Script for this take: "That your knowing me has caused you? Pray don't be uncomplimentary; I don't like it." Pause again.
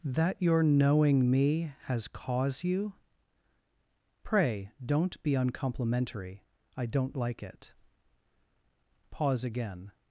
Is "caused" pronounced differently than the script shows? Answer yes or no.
yes